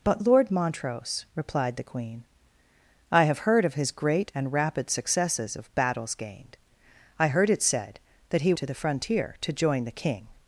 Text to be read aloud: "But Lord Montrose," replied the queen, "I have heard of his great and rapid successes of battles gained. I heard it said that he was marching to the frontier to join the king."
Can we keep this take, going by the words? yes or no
no